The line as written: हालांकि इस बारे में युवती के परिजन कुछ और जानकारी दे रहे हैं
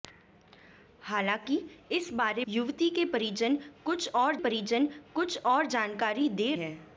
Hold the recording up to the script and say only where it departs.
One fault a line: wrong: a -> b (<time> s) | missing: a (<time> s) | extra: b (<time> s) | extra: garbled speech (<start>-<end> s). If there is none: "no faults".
missing: में (2.5 s)
extra: परिजन कुछ और (4.4 s)
missing: रहे (6.5 s)